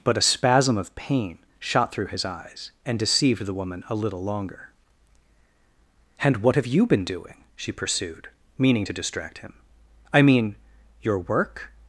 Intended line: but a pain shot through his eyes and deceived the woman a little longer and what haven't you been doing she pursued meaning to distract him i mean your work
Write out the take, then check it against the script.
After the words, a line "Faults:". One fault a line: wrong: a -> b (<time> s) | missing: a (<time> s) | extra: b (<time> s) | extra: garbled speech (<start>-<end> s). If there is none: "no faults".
but a spasm of pain shot through his eyes and deceived the woman a little longer and what have you been doing she pursued meaning to distract him i mean your work
Faults:
extra: spasm of (0.2 s)
wrong: haven't -> have (6.5 s)